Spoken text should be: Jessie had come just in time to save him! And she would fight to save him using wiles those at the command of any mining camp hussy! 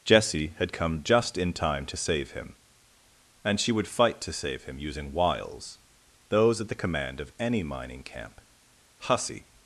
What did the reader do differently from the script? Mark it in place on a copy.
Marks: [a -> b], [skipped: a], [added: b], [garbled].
Jessie had come just in time to save him! And she would fight to save him using wiles those at the command of any mining camp hussy!